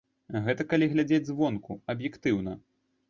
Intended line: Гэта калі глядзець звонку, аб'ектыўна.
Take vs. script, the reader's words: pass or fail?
pass